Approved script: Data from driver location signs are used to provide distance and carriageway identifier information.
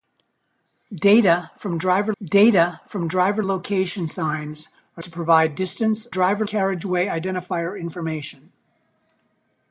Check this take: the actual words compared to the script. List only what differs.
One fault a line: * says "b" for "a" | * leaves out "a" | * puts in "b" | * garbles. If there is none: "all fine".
* puts in "data from driver"
* leaves out "used"
* says "driver" for "and"